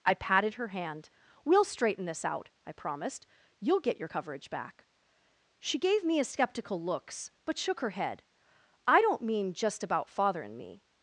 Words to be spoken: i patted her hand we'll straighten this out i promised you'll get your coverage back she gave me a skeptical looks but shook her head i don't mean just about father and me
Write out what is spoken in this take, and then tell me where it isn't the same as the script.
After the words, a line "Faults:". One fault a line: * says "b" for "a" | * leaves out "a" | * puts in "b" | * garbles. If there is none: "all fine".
i patted her hand we'll straighten this out i promised you'll get your coverage back she gave me a skeptical looks but shook her head i don't mean just about father and me
Faults:
all fine